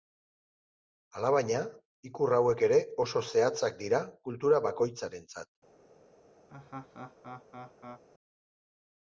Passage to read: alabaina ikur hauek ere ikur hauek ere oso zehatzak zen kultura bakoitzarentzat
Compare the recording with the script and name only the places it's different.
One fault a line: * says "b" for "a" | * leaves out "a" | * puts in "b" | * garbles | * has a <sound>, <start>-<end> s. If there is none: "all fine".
* leaves out "ikur hauek ere"
* says "dira" for "zen"
* has a laugh, 6.5-8.0 s